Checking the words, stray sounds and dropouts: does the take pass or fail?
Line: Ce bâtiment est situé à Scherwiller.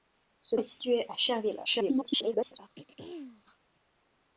fail